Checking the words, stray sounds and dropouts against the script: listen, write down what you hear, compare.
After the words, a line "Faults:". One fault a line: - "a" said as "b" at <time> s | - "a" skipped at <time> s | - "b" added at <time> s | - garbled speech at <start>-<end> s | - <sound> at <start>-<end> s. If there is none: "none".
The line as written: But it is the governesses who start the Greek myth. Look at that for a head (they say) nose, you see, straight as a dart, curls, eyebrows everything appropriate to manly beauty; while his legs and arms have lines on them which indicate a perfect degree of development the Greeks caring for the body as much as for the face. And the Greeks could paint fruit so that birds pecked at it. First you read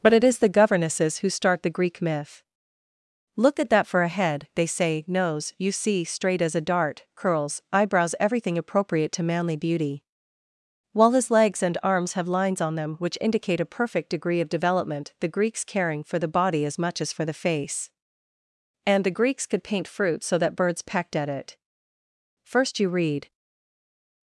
But it is the governesses who start the Greek myth. Look at that for a head (they say) nose, you see, straight as a dart, curls, eyebrows everything appropriate to manly beauty; while his legs and arms have lines on them which indicate a perfect degree of development the Greeks caring for the body as much as for the face. And the Greeks could paint fruit so that birds pecked at it. First you read
Faults:
none